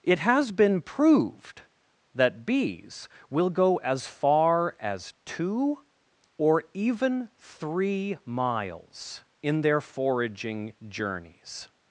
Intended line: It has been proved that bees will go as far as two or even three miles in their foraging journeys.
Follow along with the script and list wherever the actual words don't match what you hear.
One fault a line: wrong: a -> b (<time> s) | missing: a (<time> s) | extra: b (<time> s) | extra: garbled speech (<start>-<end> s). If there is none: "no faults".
no faults